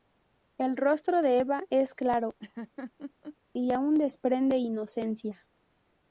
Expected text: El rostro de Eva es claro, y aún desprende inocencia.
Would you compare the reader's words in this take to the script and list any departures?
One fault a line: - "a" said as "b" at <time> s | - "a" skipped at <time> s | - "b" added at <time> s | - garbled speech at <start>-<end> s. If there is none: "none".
none